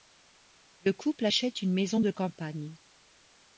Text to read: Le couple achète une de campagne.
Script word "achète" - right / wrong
right